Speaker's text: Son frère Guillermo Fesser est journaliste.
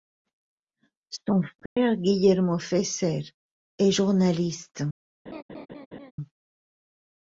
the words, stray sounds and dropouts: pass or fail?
fail